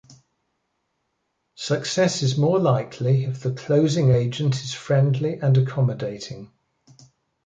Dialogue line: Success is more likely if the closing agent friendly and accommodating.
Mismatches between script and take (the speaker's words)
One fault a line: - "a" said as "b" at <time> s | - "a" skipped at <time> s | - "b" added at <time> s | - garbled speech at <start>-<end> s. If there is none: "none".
- "is" added at 4.6 s